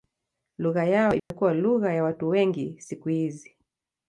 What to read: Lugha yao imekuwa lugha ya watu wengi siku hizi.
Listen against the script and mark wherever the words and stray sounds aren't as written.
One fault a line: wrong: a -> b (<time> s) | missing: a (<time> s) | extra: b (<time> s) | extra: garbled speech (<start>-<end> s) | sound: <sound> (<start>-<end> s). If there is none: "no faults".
sound: dropout (1.2-1.3 s)